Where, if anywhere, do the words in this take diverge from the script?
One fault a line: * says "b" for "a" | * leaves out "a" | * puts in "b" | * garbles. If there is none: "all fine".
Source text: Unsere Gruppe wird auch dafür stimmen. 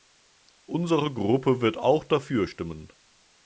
all fine